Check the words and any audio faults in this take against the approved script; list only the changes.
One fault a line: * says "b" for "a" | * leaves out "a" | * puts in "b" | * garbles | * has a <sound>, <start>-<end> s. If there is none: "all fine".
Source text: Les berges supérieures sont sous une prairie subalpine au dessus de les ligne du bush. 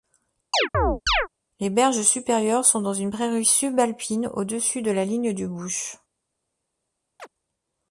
* has a chirp, 0.5-1.3 s
* says "dans" for "sous"
* says "la" for "les"
* has a chirp, 7.2-7.3 s